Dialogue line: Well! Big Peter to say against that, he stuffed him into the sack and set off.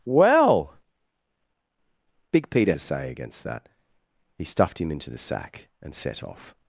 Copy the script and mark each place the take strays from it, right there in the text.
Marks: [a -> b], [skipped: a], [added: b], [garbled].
Well! Big Peter to say against that, he stuffed him into the sack and set off.